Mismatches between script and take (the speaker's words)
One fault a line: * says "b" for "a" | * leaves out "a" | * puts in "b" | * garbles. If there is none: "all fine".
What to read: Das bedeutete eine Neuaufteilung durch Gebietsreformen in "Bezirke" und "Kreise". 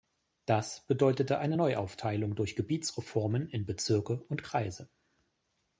all fine